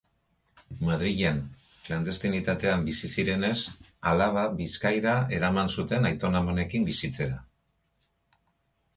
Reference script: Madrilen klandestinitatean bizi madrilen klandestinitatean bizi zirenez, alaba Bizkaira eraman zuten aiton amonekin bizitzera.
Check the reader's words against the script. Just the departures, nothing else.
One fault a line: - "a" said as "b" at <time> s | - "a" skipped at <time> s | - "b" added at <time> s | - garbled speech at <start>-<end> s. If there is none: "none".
- "madrilen klandestinitatean bizi" skipped at 3.1 s